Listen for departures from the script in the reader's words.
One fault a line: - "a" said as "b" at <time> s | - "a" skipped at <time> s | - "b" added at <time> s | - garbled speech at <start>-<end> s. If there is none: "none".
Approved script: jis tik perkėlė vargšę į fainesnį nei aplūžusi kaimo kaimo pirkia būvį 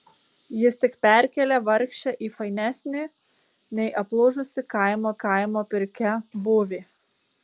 none